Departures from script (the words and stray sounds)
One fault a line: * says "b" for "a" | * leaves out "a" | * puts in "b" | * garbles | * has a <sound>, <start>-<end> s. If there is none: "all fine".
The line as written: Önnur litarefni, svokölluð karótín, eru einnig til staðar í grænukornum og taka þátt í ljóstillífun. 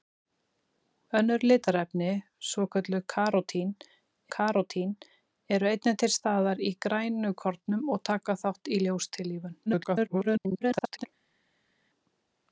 * puts in "karótín"
* garbles